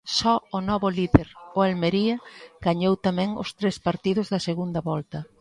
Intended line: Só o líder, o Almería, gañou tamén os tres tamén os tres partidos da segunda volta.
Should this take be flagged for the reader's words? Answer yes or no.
yes